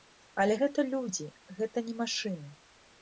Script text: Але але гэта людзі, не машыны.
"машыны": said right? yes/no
yes